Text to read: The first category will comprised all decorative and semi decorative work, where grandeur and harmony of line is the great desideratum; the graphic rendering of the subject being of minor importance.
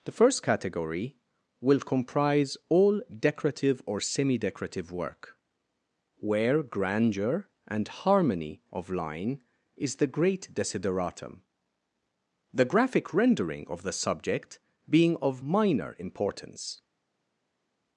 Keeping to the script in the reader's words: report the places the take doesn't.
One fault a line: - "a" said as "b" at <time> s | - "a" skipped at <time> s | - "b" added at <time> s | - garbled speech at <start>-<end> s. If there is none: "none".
- "comprised" said as "comprise" at 1.8 s
- "and" said as "or" at 3.9 s